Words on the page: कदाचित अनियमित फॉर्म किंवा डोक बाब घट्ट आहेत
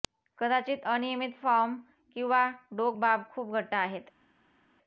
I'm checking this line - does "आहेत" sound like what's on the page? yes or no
yes